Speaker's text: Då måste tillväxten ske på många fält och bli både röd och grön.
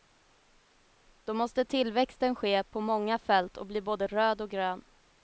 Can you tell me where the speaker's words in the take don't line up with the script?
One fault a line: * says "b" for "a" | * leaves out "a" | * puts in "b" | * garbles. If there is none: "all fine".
all fine